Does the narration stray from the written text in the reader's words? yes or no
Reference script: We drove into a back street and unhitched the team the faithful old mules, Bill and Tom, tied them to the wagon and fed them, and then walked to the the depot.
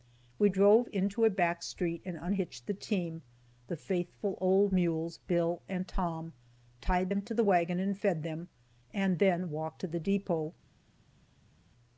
yes